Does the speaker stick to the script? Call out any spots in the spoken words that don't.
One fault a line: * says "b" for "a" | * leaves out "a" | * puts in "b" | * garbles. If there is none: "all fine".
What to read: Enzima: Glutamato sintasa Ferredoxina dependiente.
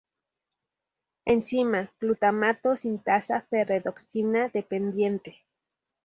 all fine